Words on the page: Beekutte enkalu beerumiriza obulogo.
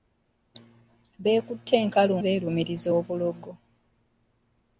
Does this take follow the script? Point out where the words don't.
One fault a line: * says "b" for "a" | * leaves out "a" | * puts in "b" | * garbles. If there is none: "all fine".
all fine